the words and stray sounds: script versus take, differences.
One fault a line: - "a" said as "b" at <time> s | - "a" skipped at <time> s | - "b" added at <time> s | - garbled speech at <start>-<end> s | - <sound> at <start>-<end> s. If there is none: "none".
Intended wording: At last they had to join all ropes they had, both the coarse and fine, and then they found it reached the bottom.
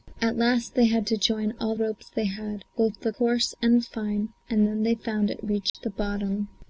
- dropout at 5.7-5.7 s